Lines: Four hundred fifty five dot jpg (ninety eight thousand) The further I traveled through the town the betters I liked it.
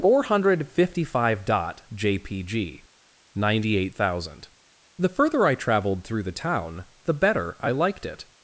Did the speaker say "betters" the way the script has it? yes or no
no